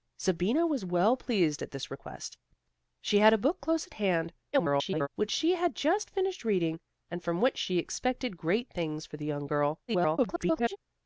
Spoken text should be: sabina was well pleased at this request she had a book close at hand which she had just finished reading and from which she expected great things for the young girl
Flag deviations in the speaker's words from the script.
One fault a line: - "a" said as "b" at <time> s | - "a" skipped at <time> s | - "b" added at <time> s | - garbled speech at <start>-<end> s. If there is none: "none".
- garbled speech at 4.5-5.1 s
- garbled speech at 9.9-10.8 s